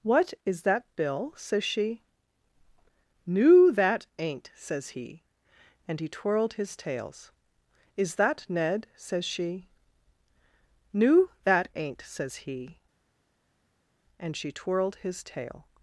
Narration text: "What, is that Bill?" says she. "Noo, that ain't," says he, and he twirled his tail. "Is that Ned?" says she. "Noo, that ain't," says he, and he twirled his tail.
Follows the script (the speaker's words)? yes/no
no